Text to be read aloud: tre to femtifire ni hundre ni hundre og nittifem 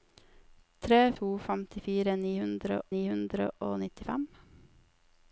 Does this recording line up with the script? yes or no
yes